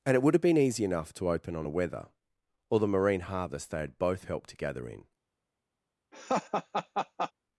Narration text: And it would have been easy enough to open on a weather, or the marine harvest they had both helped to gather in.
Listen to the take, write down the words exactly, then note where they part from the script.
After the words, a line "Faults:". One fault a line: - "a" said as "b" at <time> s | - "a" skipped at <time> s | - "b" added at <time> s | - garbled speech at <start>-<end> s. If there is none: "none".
And it would have been easy enough to open on a weather, or the marine harvest they had both helped to gather in.
Faults:
none